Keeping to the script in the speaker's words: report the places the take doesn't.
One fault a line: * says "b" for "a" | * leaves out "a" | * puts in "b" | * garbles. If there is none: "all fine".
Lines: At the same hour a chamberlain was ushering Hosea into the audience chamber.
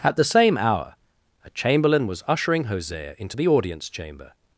all fine